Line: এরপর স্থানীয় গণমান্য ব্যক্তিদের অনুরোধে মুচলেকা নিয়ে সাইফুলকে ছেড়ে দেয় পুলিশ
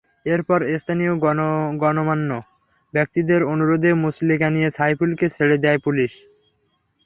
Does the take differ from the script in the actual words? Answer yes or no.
no